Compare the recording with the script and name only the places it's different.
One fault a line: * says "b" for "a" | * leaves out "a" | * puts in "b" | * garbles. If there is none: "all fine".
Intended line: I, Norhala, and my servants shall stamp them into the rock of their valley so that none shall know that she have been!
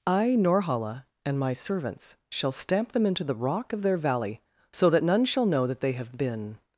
* says "they" for "she"